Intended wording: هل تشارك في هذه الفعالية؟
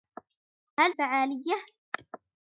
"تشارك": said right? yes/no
no